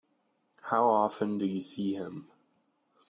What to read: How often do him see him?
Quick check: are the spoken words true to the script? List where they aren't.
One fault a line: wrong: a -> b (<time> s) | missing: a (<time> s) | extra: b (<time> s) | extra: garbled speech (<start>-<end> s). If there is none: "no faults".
wrong: him -> you (1.4 s)